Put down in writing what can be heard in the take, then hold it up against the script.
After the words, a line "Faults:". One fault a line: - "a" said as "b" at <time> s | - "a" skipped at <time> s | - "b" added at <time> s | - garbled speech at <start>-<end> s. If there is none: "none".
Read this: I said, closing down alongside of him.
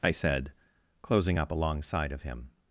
I said, closing up alongside of him.
Faults:
- "down" said as "up" at 1.4 s